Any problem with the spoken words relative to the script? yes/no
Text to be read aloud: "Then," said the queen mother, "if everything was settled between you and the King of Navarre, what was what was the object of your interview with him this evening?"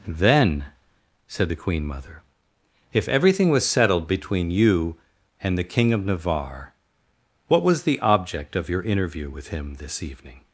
yes